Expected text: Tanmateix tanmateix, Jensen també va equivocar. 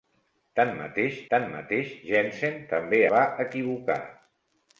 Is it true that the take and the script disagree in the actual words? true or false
false